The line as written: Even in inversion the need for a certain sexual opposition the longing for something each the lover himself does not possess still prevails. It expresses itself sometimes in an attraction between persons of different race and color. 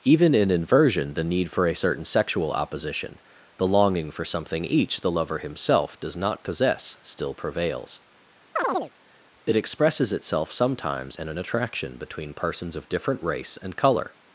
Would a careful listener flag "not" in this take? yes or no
no